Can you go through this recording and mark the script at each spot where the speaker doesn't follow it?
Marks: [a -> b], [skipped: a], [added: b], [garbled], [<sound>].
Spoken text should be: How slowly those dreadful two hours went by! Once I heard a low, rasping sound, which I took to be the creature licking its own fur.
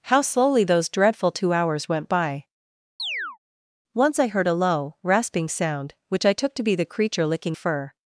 How slowly those dreadful two hours went by! [chirp] Once I heard a low, rasping sound, which I took to be the creature licking [skipped: its own] fur.